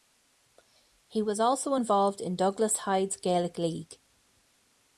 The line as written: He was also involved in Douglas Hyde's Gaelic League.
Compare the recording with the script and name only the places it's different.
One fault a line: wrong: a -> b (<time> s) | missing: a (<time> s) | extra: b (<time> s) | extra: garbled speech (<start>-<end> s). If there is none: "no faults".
no faults